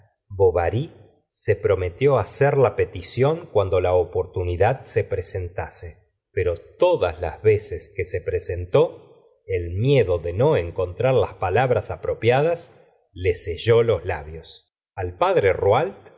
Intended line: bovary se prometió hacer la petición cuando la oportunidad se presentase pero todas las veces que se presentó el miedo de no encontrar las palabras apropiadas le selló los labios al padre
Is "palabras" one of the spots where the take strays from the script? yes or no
no